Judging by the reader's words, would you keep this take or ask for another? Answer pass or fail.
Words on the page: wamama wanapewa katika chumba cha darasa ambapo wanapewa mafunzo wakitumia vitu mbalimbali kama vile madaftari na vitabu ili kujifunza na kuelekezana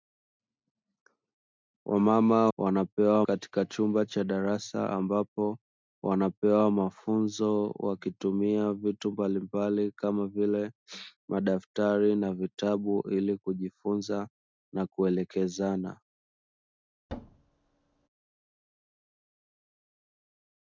pass